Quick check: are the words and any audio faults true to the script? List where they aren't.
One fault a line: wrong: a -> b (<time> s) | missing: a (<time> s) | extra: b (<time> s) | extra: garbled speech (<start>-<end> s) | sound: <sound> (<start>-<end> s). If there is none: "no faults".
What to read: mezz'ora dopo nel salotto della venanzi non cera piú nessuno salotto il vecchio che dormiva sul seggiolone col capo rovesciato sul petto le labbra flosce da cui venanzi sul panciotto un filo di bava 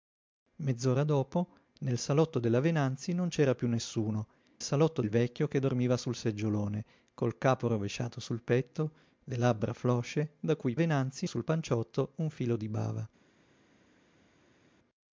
no faults